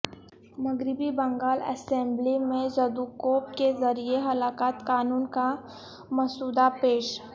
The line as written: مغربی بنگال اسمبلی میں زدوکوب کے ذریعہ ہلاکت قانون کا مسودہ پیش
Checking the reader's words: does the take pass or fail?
pass